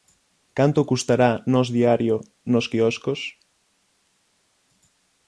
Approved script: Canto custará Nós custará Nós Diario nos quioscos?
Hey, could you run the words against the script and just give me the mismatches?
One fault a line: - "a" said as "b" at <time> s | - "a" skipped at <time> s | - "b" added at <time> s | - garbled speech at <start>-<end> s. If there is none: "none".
- "custará Nós" skipped at 1.7 s